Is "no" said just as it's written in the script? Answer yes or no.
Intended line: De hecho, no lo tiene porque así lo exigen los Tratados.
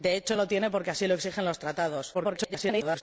no